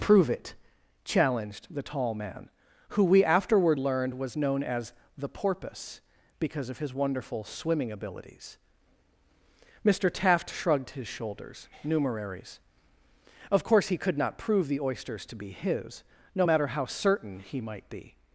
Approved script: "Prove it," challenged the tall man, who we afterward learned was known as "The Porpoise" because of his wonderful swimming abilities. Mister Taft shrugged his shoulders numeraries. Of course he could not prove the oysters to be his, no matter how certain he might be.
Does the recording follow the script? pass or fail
pass